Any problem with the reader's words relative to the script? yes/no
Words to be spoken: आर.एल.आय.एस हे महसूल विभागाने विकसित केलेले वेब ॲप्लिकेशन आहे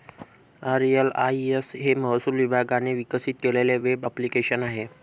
no